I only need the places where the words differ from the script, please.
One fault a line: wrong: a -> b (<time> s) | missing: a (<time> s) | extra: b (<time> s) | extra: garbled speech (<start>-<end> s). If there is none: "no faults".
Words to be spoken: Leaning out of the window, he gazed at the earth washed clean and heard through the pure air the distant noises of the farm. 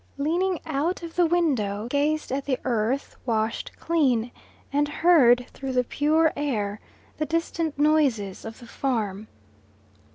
missing: he (1.9 s)